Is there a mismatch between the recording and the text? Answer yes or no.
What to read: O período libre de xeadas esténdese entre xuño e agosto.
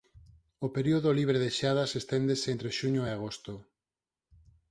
no